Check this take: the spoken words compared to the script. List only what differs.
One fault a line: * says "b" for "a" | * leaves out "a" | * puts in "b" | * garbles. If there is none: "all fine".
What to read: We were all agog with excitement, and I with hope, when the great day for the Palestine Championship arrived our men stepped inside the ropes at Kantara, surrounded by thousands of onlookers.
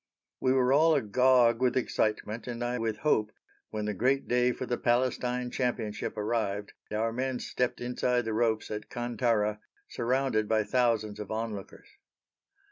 all fine